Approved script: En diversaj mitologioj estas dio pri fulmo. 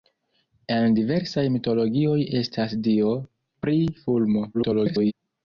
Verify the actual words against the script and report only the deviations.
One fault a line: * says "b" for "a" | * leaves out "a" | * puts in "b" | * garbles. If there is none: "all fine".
* garbles